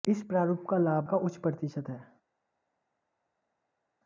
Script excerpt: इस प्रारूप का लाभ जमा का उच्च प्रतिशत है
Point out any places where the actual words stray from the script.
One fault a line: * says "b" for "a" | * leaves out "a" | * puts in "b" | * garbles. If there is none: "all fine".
* leaves out "जमा"